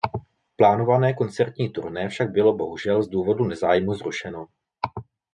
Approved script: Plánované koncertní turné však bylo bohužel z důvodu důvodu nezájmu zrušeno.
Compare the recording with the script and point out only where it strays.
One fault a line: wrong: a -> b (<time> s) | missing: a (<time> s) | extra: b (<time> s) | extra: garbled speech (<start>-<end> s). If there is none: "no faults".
missing: důvodu (3.4 s)